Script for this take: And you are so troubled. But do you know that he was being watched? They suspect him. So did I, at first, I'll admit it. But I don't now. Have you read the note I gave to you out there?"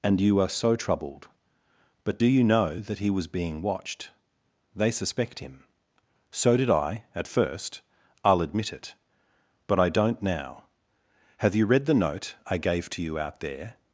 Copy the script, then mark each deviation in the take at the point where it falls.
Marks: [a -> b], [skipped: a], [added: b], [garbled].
And you are so troubled. But do you know that he was being watched? They suspect him. So did I, at first, I'll admit it. But I don't now. Have you read the note I gave to you out there?"